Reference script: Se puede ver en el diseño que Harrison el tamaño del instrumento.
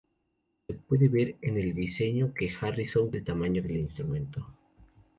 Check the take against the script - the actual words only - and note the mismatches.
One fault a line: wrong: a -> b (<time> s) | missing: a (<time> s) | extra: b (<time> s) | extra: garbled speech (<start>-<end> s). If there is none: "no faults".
no faults